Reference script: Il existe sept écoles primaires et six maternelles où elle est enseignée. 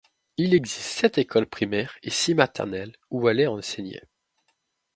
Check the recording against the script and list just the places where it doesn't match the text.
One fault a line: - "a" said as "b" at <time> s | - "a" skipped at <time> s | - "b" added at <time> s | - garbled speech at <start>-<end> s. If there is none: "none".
none